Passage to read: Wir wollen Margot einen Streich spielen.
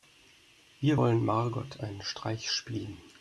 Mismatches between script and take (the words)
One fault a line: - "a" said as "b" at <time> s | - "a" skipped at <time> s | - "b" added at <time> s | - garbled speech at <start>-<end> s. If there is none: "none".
none